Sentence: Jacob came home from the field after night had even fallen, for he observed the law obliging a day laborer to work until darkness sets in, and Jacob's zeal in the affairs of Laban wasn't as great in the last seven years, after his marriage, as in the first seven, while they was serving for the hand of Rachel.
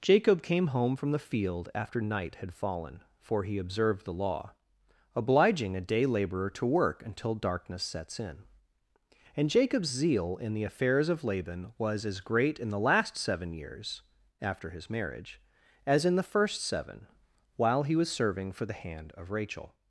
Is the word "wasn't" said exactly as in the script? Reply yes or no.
no